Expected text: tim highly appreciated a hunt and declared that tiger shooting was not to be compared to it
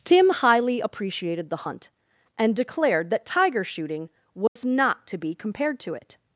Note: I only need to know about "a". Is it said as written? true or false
false